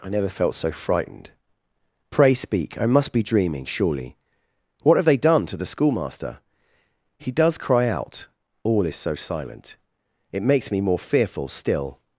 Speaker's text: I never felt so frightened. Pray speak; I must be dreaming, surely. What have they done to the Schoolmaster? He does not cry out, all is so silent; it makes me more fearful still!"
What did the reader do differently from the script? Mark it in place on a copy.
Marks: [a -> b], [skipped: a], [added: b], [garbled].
I never felt so frightened. Pray speak; I must be dreaming, surely. What have they done to the Schoolmaster? He does [skipped: not] cry out, all is so silent; it makes me more fearful still!"